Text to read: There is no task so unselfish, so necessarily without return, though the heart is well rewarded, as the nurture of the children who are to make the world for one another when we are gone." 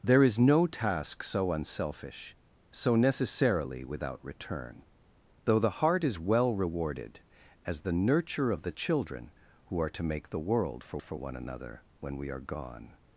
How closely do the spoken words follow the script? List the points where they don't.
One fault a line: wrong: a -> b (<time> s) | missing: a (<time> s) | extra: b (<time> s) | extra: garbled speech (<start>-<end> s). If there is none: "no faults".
extra: for (11.0 s)